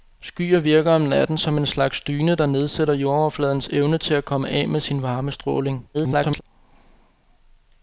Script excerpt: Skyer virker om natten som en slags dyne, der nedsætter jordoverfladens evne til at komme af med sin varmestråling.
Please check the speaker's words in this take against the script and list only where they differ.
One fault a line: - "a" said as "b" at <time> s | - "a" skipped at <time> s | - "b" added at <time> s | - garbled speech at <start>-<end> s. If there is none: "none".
- garbled speech at 5.9-6.4 s